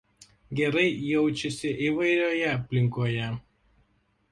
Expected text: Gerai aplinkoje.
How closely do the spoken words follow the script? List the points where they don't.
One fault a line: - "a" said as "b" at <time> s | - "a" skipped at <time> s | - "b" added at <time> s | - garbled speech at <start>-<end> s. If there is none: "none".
- "jaučiasi įvairioje" added at 1.1 s